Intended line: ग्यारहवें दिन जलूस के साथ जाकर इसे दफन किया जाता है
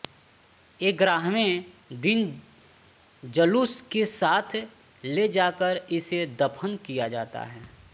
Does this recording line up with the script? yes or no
no